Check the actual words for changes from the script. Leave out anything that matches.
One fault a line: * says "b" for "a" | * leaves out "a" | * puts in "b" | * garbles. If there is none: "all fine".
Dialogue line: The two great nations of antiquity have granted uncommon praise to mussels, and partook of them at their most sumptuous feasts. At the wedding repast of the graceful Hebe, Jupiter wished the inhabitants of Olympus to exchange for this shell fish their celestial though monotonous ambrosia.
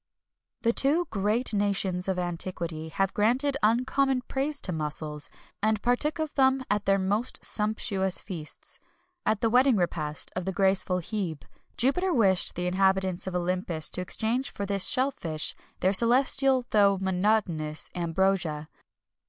all fine